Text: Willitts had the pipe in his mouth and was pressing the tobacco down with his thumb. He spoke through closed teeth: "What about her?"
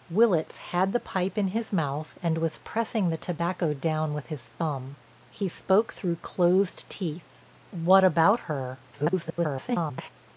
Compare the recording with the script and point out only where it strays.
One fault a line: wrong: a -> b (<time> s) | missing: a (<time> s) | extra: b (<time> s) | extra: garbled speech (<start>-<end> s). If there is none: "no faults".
extra: garbled speech (8.9-10.1 s)